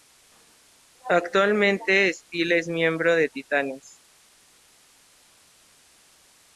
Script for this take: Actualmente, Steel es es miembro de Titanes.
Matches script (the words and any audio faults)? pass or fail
fail